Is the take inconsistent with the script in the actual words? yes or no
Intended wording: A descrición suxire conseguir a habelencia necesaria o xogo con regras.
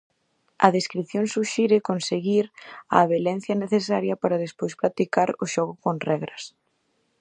yes